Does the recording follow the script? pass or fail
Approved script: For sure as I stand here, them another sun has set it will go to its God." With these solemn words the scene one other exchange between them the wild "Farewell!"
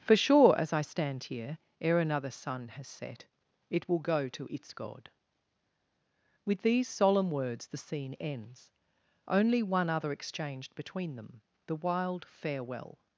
fail